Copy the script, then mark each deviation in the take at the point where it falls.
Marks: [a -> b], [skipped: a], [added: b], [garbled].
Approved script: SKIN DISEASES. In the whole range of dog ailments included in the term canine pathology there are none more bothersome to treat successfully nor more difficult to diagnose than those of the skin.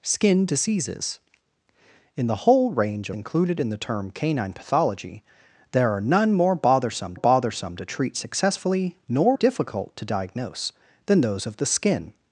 SKIN DISEASES. In the whole range [skipped: of dog ailments] included in the term canine pathology there are none more bothersome [added: bothersome] to treat successfully nor [skipped: more] difficult to diagnose than those of the skin.